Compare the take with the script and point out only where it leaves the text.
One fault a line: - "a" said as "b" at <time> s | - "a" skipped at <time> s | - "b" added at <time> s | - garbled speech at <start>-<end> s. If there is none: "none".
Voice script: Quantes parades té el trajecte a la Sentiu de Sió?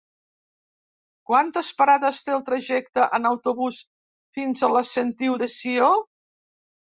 - "en autobús fins" added at 3.2 s